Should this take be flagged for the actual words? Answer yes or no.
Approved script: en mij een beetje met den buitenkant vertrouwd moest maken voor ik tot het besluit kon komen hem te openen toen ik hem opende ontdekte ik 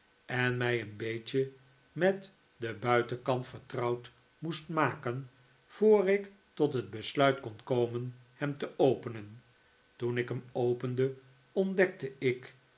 no